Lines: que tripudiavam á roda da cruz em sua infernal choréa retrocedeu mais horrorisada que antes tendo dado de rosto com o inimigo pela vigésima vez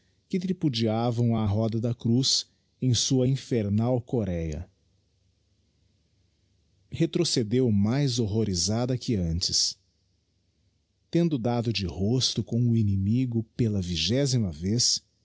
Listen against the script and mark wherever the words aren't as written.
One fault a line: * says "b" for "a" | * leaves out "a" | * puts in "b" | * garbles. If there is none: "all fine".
all fine